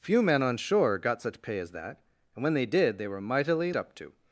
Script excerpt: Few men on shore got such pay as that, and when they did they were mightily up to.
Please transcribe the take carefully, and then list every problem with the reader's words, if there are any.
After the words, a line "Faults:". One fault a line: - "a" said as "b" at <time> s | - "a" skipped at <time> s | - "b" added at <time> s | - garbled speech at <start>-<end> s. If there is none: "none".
Few men on shore got such pay as that, and when they did they were mightily up to.
Faults:
none